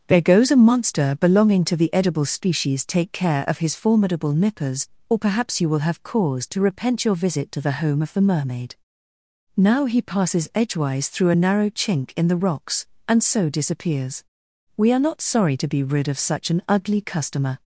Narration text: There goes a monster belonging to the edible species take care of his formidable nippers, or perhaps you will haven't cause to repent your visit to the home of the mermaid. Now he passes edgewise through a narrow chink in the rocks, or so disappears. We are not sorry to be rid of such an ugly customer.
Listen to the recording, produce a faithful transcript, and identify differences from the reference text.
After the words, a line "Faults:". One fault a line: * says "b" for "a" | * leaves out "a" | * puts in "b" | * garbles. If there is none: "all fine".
There goes a monster belonging to the edible species take care of his formidable nippers, or perhaps you will have cause to repent your visit to the home of the mermaid. Now he passes edgewise through a narrow chink in the rocks, and so disappears. We are not sorry to be rid of such an ugly customer.
Faults:
* says "have" for "haven't"
* says "and" for "or"